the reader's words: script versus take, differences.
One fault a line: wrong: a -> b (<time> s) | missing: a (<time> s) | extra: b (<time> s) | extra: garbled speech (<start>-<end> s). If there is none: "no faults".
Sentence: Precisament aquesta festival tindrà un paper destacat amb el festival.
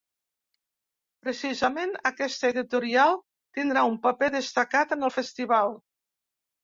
wrong: festival -> editorial (2.5 s)
wrong: amb -> en (5.0 s)